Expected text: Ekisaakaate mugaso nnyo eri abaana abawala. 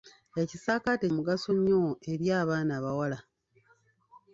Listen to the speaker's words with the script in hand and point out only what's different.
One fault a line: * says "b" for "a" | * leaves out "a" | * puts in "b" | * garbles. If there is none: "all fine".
all fine